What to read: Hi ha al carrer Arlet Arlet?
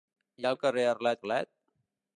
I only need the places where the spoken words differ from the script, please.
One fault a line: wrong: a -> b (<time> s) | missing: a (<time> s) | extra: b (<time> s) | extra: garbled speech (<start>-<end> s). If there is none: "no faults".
no faults